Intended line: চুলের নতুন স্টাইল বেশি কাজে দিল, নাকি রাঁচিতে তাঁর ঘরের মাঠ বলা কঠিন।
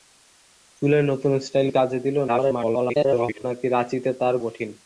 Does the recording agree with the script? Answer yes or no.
no